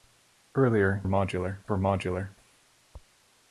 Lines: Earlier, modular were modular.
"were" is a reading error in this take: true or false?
false